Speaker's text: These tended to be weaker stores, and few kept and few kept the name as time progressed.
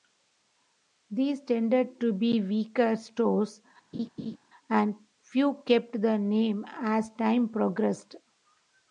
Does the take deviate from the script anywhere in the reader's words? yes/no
yes